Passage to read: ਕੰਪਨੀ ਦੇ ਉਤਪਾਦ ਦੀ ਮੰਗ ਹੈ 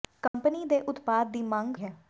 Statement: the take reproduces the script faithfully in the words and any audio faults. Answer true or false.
false